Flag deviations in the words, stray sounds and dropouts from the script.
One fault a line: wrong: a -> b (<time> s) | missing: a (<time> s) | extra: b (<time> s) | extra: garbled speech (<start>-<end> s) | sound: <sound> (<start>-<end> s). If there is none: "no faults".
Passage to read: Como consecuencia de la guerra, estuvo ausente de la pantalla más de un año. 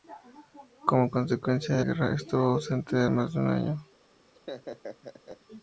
missing: la (1.8 s)
missing: la pantalla (3.1 s)
sound: laugh (4.3-5.4 s)